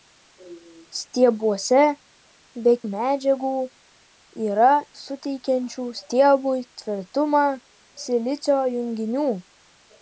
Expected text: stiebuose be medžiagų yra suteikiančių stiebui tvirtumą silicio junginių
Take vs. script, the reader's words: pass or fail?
pass